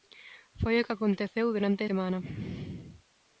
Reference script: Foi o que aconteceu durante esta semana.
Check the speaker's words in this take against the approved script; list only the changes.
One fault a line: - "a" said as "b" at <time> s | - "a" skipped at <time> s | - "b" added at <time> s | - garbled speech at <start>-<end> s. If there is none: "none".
- "esta" skipped at 1.8 s